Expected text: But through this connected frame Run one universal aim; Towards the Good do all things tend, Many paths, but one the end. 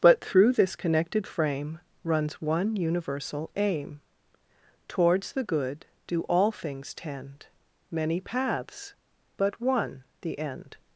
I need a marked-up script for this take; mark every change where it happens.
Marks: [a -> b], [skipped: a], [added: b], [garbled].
But through this connected frame [Run -> Runs] one universal aim; Towards the Good do all things tend, Many paths, but one the end.